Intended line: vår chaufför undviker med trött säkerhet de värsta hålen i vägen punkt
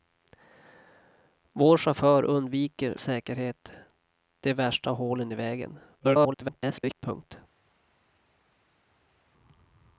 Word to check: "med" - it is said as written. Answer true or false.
false